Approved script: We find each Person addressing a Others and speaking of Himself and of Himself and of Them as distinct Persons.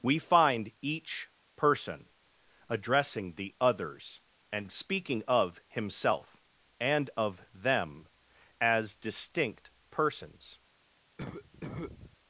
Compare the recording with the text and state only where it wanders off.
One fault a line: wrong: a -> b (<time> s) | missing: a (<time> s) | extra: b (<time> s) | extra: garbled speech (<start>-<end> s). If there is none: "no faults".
wrong: a -> the (3.4 s)
missing: Himself and of (7.4 s)